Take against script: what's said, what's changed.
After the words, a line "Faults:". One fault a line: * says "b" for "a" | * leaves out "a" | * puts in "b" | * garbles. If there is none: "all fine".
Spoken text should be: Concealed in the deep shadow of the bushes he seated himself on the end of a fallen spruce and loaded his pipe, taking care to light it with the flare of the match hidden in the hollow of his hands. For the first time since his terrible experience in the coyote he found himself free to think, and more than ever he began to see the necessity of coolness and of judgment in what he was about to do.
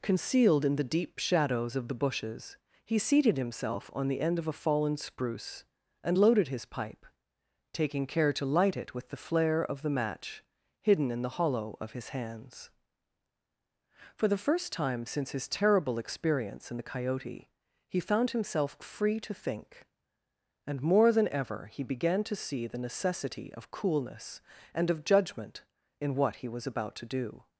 Concealed in the deep shadows of the bushes he seated himself on the end of a fallen spruce and loaded his pipe, taking care to light it with the flare of the match hidden in the hollow of his hands. For the first time since his terrible experience in the coyote he found himself free to think, and more than ever he began to see the necessity of coolness and of judgment in what he was about to do.
Faults:
* says "shadows" for "shadow"